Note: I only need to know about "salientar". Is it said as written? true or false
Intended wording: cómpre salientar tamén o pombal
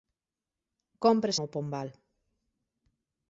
false